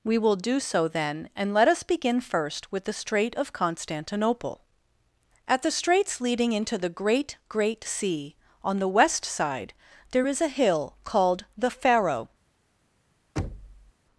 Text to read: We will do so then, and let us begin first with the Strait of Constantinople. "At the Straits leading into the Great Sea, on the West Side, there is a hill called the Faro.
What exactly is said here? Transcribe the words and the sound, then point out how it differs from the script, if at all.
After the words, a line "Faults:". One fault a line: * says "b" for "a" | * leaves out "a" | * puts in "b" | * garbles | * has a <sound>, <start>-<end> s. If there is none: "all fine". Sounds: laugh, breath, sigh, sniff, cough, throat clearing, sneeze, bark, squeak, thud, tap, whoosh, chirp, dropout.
We will do so then, and let us begin first with the Strait of Constantinople. "At the Straits leading into the Great Great Sea, on the West Side, there is a hill called the Faro.
Faults:
* puts in "Great"
* has a thud, 13.4-13.9 s